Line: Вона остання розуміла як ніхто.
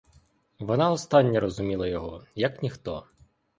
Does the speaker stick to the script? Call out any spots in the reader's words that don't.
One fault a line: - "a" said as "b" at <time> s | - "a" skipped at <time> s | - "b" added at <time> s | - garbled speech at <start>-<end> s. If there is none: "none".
- "його" added at 1.9 s